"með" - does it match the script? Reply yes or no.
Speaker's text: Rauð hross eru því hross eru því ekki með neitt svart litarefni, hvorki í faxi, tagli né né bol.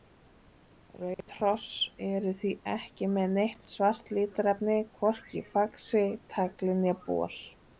yes